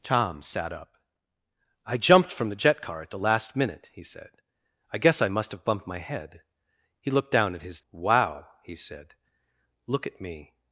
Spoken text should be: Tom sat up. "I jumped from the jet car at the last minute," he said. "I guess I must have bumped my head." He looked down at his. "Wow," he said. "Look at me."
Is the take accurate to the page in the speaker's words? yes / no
yes